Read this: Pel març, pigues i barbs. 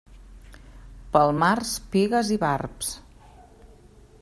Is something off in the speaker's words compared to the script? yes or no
no